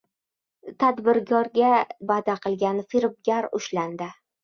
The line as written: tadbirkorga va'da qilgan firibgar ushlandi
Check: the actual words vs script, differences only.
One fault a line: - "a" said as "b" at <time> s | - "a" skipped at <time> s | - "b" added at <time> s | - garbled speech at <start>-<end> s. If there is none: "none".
none